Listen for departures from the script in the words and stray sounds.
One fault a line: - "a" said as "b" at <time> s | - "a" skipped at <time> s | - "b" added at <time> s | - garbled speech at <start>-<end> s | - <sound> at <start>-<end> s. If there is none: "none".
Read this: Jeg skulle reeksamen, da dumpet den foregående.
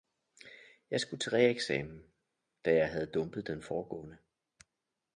- "til" added at 1.2 s
- "jeg havde" added at 2.7 s